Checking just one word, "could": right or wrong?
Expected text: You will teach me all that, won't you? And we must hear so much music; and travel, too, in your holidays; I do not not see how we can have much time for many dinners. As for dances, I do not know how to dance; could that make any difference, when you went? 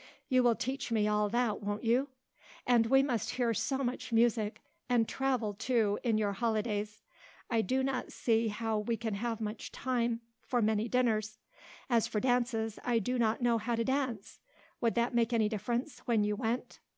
wrong